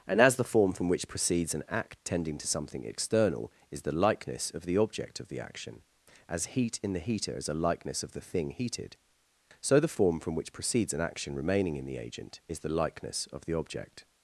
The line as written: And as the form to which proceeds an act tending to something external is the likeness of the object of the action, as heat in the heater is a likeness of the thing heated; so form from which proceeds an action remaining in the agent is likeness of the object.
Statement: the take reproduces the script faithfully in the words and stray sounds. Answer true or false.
false